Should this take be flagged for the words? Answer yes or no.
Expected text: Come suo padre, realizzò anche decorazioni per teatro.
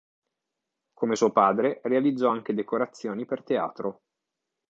no